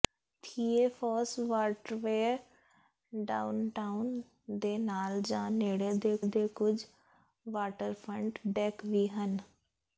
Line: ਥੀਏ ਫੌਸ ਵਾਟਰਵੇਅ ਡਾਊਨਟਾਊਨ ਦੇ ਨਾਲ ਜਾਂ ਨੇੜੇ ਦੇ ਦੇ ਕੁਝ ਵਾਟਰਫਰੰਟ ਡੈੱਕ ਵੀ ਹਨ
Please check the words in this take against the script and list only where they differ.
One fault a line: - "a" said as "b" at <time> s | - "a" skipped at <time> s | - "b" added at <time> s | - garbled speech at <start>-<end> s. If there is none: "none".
none